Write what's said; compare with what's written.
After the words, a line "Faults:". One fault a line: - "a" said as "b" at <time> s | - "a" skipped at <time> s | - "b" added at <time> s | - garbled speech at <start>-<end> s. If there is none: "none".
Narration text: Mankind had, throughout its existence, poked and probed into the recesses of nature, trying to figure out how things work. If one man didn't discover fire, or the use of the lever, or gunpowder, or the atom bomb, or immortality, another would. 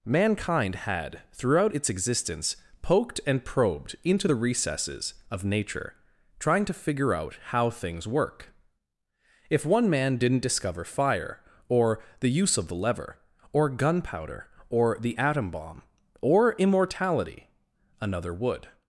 Mankind had, throughout its existence, poked and probed into the recesses of nature, trying to figure out how things work. If one man didn't discover fire, or the use of the lever, or gunpowder, or the atom bomb, or immortality, another would.
Faults:
none